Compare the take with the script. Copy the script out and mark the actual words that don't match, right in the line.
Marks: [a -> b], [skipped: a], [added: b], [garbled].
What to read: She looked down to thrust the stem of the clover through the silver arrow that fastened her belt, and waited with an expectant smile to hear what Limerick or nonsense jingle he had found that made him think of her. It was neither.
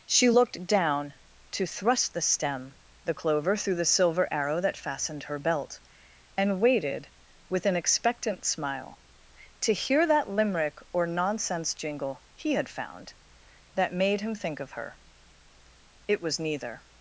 She looked down to thrust the stem [skipped: of] the clover through the silver arrow that fastened her belt, and waited with an expectant smile to hear [what -> that] Limerick or nonsense jingle he had found that made him think of her. It was neither.